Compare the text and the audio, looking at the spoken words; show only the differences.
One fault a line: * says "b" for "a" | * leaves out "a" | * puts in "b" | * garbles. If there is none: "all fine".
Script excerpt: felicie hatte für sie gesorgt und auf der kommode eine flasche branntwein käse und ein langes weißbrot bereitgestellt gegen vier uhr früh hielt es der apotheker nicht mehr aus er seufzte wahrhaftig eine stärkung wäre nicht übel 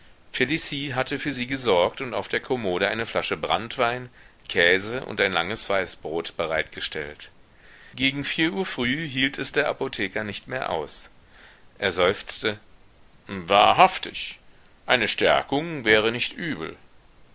all fine